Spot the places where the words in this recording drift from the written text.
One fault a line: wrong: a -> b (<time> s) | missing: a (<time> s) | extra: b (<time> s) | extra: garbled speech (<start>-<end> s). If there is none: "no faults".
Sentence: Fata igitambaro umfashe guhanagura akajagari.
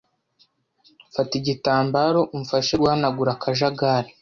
no faults